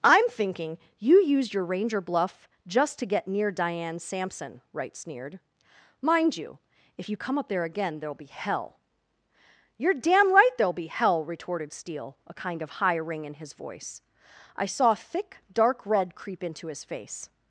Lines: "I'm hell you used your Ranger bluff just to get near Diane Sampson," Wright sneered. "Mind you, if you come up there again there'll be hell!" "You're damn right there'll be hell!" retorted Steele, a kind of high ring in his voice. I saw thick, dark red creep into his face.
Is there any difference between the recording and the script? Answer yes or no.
yes